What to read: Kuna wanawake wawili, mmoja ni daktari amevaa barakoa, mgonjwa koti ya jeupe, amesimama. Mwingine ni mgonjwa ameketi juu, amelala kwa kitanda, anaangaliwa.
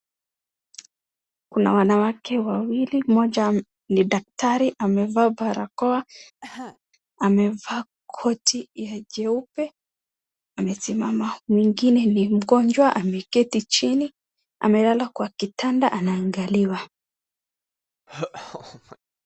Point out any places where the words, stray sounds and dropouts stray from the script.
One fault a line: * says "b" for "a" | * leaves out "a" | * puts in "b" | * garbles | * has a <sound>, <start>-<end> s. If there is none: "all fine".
* has a cough, 6.4-6.8 s
* says "amevaa" for "mgonjwa"
* says "chini" for "juu"
* has a laugh, 18.1-19.0 s